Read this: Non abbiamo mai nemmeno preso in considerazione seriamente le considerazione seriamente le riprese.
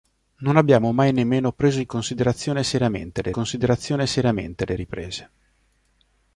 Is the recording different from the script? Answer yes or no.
no